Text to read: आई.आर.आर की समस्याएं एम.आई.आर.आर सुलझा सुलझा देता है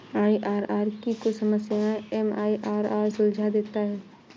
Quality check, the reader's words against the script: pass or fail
fail